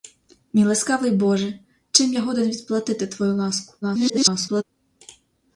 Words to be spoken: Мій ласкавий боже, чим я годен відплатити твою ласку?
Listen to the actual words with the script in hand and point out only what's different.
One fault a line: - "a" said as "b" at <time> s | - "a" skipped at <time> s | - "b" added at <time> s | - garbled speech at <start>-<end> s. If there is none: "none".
- garbled speech at 3.8-4.6 s